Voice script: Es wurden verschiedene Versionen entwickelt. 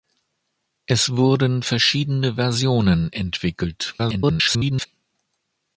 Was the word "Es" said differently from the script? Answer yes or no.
no